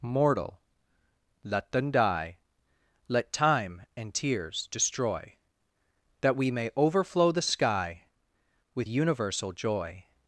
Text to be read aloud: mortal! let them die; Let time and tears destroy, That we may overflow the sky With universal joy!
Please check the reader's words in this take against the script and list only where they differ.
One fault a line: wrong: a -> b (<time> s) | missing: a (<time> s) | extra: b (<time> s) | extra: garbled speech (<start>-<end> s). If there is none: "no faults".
no faults